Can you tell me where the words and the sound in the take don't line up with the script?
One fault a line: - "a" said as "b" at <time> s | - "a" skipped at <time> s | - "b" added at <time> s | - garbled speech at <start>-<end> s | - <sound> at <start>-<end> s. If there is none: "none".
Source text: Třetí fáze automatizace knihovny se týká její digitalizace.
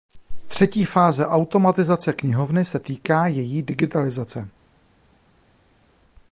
none